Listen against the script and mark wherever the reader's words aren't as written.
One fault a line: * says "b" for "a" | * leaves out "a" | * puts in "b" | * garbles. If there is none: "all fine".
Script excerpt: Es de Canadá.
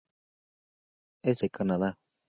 all fine